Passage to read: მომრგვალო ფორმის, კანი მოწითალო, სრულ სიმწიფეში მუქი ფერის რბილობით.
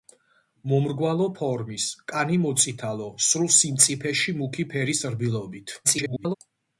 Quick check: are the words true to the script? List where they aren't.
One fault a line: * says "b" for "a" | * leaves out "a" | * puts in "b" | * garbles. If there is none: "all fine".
* garbles